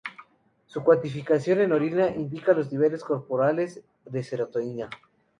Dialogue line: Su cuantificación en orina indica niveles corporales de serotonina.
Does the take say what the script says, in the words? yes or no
no